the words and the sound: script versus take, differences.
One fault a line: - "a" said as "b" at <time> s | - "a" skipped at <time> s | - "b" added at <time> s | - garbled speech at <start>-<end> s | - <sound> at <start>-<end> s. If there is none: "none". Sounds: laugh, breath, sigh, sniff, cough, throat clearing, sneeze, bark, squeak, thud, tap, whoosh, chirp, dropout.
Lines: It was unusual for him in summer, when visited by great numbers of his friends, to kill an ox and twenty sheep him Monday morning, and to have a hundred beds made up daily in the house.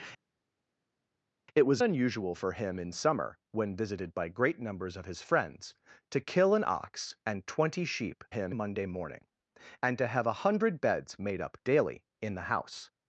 none